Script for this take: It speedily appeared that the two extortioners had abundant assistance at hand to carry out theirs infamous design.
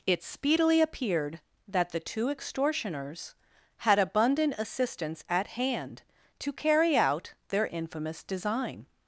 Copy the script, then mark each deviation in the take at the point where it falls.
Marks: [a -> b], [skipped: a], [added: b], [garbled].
It speedily appeared that the two extortioners had abundant assistance at hand to carry out [theirs -> their] infamous design.